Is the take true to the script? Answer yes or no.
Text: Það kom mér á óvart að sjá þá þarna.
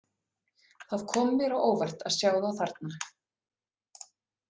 yes